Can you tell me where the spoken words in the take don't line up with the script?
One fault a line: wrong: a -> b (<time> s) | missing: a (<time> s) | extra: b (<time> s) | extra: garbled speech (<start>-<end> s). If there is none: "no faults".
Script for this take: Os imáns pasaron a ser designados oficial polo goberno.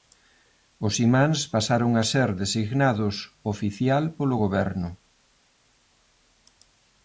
no faults